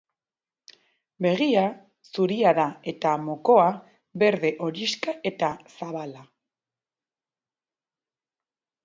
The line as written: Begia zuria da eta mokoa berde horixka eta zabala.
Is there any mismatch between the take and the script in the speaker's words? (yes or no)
no